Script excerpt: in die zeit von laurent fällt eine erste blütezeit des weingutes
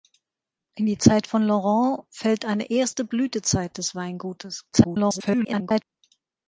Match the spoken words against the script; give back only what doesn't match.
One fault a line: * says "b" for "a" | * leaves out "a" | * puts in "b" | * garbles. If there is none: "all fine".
* garbles